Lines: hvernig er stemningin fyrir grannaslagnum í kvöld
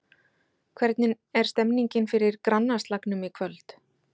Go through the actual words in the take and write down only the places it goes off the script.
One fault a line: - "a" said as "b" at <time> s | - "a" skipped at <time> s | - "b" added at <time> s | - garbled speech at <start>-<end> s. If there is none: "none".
none